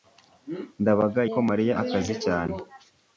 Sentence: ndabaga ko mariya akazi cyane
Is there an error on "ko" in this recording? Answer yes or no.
no